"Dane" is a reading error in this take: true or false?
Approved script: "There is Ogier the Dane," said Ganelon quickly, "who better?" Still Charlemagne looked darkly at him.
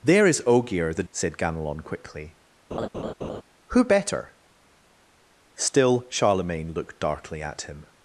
true